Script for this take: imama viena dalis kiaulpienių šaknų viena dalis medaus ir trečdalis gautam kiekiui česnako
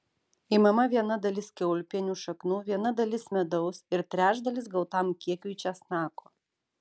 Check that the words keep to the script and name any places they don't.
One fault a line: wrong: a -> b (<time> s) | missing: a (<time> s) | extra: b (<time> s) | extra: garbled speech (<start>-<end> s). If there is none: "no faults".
no faults